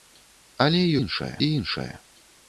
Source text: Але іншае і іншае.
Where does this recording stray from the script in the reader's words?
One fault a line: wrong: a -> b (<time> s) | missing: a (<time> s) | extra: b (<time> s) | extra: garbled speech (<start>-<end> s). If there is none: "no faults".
no faults